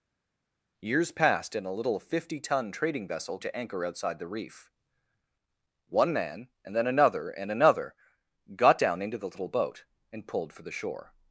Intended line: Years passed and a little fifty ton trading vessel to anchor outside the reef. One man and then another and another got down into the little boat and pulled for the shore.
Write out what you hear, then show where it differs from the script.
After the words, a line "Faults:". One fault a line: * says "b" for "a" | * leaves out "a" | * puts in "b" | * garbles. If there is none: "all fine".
Years passed and a little fifty ton trading vessel to anchor outside the reef. One man and then another and another got down into the little boat and pulled for the shore.
Faults:
all fine